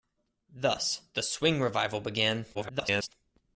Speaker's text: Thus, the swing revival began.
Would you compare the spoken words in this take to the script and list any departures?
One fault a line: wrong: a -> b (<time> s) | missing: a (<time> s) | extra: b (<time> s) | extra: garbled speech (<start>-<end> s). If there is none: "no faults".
extra: garbled speech (2.5-3.1 s)